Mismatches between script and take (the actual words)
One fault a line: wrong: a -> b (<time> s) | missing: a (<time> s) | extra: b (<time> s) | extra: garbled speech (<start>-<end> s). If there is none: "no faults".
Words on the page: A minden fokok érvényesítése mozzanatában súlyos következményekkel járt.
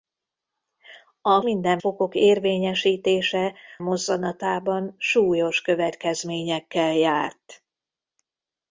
no faults